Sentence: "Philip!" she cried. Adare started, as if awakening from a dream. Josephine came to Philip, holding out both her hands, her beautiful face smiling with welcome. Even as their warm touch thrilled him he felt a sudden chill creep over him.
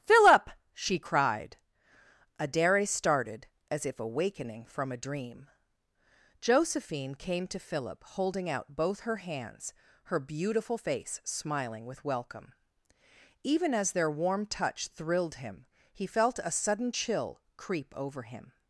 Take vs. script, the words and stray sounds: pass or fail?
pass